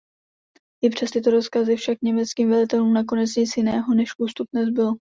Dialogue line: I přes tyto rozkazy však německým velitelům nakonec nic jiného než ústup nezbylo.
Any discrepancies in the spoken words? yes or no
no